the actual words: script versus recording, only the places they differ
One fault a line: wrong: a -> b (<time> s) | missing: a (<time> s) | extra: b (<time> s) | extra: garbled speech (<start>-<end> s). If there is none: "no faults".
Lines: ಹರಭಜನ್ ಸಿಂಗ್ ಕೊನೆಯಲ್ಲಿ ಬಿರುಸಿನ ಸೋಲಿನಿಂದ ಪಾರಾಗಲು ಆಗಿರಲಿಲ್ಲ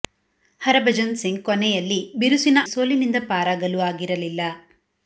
no faults